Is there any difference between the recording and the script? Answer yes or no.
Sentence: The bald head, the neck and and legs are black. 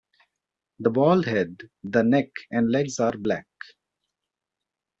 yes